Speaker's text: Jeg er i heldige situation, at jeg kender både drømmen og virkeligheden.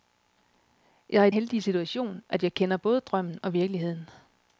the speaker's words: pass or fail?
pass